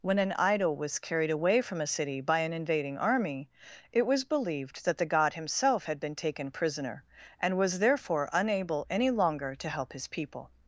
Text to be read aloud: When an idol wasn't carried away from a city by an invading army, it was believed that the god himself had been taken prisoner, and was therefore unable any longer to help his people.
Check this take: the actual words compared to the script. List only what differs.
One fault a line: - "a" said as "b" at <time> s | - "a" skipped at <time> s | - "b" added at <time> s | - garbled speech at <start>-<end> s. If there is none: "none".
- "wasn't" said as "was" at 0.8 s